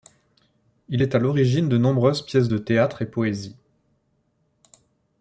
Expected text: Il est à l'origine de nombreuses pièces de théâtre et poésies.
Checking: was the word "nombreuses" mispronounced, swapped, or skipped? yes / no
no